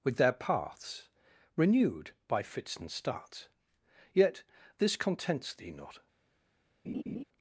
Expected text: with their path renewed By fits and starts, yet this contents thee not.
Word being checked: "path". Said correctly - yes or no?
no